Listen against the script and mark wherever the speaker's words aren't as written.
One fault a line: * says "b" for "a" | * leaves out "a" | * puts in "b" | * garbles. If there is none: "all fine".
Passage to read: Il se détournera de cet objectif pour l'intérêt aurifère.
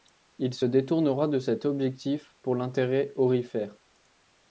all fine